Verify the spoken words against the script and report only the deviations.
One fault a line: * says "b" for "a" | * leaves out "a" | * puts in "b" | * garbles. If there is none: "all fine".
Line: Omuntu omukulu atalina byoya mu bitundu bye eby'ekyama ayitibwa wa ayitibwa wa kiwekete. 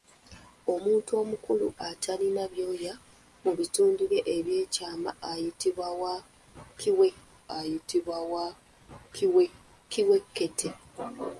all fine